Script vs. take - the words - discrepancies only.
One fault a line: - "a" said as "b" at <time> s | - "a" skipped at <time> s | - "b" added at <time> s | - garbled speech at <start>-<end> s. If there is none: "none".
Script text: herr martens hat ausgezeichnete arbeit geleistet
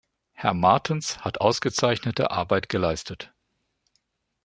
none